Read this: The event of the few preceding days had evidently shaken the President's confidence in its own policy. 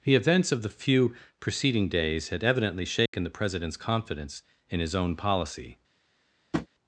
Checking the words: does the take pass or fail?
fail